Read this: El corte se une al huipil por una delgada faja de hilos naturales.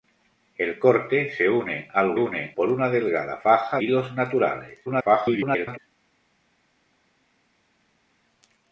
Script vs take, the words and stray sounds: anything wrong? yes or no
yes